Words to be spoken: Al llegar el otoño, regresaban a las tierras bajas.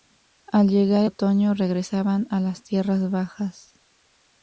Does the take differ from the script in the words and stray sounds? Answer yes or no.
yes